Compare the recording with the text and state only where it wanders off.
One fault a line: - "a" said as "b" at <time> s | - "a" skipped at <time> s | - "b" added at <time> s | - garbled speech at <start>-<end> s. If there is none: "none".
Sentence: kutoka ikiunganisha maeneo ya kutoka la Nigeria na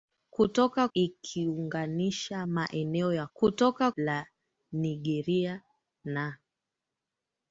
none